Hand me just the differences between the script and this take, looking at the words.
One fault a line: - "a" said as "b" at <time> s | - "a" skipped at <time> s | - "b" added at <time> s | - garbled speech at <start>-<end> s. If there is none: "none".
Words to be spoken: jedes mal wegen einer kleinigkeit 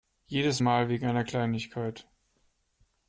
none